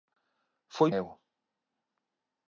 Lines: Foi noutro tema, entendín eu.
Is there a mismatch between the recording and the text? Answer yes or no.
yes